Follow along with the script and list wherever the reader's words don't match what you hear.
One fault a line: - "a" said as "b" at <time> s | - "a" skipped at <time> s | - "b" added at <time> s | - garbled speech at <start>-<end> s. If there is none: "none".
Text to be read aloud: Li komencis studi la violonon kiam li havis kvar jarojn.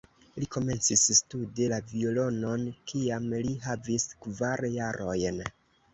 none